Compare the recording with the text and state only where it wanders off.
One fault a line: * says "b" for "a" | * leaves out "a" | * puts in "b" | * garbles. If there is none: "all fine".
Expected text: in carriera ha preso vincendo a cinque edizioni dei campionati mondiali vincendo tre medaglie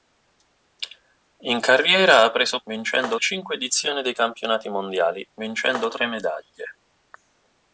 all fine